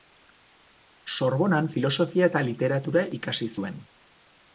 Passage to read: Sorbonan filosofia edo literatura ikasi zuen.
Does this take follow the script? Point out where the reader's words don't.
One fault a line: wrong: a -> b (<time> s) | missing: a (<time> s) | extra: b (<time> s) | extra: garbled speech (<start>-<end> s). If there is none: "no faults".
wrong: edo -> eta (2.3 s)